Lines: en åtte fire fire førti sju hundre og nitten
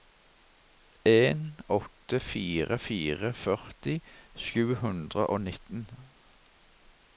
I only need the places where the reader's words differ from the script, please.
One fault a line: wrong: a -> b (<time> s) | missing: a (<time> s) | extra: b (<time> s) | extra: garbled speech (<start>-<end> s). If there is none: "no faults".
no faults